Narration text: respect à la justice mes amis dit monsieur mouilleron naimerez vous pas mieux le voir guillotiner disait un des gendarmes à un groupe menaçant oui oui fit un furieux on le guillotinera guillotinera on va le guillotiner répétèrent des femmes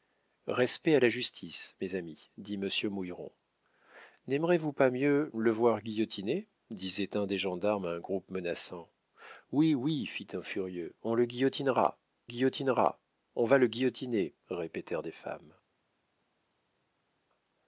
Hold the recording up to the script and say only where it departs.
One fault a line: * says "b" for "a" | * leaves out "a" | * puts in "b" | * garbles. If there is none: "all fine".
all fine